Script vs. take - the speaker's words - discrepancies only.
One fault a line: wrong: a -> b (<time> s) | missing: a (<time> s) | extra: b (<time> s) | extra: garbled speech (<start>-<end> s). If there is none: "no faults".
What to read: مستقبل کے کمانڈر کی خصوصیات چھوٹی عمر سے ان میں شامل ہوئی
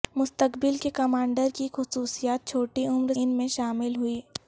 missing: سے (3.1 s)